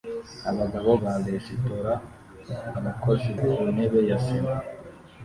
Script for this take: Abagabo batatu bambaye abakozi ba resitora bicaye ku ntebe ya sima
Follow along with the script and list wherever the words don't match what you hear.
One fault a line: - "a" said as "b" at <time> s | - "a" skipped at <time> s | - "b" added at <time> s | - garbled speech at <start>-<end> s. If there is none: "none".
- "batatu bambaye abakozi" skipped at 0.9 s
- "bicaye" said as "abakozi" at 2.8 s